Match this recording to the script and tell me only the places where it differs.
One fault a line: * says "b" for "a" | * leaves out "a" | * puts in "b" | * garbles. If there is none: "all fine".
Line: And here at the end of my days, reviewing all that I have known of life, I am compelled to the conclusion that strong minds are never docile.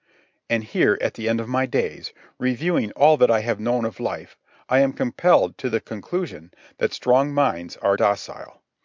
* leaves out "never"